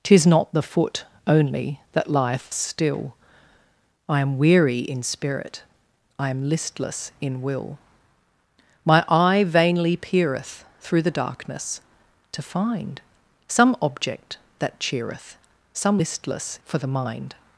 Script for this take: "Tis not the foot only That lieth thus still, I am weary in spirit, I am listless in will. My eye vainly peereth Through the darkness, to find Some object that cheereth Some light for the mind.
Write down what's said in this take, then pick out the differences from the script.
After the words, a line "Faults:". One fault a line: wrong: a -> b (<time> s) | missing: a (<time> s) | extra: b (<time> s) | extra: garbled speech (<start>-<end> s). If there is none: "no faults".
"Tis not the foot only That lieth still, I am weary in spirit, I am listless in will. My eye vainly peereth Through the darkness, to find Some object that cheereth Some listless for the mind.
Faults:
missing: thus (2.5 s)
wrong: light -> listless (16.0 s)